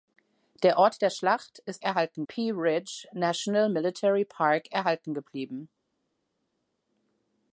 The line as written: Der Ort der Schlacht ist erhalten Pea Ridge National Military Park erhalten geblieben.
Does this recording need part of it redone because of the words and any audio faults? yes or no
no